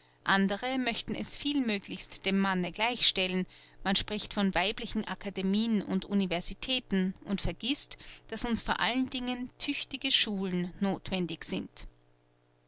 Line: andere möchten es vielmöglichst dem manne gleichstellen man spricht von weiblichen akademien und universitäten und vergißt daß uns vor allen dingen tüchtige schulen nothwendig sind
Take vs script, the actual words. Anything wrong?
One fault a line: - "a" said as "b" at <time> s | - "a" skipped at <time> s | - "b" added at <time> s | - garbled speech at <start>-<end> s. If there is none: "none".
none